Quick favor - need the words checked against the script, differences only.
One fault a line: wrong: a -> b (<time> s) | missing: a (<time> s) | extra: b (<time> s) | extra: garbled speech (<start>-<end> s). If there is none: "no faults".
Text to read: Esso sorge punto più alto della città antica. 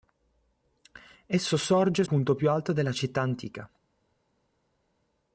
no faults